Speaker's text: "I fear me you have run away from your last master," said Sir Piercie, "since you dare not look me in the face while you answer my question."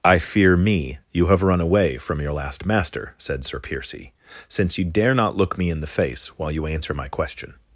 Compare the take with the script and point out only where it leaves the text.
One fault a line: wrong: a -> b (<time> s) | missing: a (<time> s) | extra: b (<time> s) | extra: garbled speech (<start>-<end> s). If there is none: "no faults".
no faults